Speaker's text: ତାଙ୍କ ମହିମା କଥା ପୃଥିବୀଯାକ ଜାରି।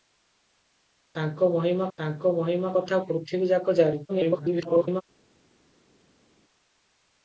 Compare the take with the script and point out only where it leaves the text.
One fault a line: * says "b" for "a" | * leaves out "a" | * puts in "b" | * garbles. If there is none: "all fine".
* puts in "ତାଙ୍କ ମହିମା"
* garbles